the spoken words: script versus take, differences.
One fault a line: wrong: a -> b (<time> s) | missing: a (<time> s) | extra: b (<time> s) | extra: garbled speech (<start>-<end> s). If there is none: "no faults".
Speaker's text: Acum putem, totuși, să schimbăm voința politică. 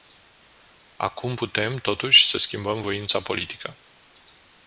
no faults